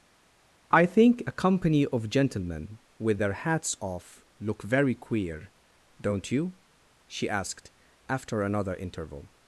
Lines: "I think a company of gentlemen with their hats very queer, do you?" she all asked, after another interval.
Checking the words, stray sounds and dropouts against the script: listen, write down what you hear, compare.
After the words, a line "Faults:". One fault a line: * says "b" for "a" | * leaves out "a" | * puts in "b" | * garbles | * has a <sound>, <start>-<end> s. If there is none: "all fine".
"I think a company of gentlemen with their hats off look very queer, don't you?" she asked, after another interval.
Faults:
* puts in "off look"
* says "don't" for "do"
* leaves out "all"